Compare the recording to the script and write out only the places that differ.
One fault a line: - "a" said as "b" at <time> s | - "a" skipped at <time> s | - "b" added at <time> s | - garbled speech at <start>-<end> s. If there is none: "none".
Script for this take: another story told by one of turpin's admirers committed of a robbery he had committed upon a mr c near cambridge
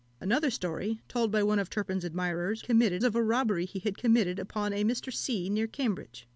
none